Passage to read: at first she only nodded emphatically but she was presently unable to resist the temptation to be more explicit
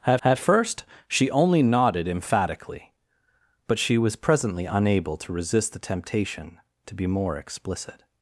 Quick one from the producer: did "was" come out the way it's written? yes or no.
yes